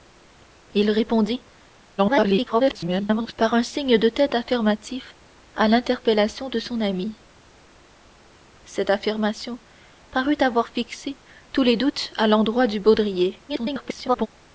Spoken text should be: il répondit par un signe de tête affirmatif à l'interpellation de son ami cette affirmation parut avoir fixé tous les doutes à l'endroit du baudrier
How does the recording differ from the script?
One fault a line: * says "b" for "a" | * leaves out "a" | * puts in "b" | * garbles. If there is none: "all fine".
* garbles
* garbles